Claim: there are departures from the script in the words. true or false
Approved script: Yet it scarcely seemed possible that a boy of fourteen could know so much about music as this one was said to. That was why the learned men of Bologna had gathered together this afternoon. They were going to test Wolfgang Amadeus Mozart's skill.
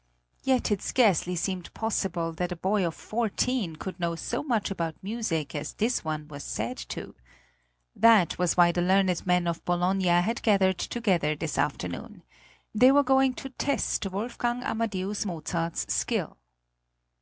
false